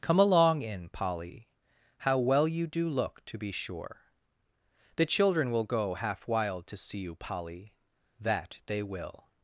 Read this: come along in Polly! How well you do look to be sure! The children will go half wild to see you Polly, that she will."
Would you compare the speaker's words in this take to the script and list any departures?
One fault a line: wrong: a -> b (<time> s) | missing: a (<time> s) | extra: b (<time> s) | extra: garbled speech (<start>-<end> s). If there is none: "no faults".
wrong: she -> they (8.7 s)